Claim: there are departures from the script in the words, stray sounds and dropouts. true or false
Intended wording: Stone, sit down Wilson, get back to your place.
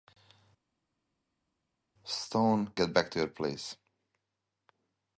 true